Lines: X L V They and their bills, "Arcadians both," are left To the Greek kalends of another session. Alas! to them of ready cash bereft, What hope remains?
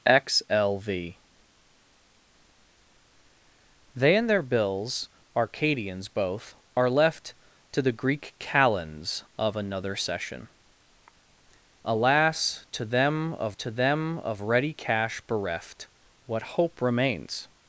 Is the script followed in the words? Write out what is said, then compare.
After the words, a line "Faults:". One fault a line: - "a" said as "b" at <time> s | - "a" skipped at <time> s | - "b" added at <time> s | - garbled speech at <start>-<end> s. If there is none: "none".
X L V They and their bills, "Arcadians both," are left To the Greek kalends of another session. Alas! to them of to them of ready cash bereft, What hope remains?
Faults:
- "to them of" added at 13.6 s